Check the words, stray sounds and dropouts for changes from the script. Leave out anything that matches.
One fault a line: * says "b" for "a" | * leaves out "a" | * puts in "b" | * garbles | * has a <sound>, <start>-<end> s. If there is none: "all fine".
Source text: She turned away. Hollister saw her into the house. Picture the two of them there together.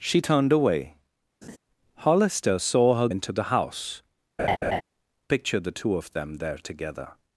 * has a laugh, 1.4-1.6 s
* has a laugh, 4.4-4.8 s